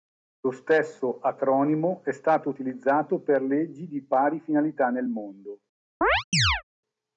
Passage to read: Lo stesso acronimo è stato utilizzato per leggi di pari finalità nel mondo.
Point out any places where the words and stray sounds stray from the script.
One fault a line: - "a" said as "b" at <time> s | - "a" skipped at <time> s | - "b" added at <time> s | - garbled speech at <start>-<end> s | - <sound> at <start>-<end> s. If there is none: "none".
- chirp at 6.0-6.6 s